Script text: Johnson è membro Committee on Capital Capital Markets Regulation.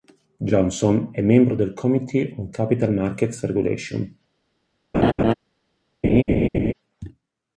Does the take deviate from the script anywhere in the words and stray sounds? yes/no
yes